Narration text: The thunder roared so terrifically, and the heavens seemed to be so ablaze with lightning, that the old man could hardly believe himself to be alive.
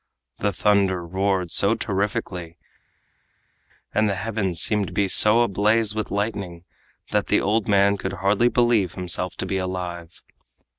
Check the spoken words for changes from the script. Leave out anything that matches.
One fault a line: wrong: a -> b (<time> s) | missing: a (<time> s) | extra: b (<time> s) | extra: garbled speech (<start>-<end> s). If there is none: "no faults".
no faults